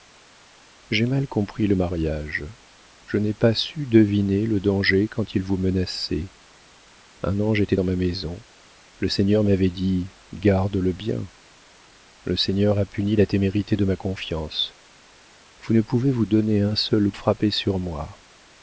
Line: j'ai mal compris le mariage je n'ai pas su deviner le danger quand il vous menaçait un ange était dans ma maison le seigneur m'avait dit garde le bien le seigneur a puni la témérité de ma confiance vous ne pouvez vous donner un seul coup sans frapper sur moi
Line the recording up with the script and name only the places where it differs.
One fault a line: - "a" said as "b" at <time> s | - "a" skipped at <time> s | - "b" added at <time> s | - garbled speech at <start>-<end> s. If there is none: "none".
- "coup sans" skipped at 17.1 s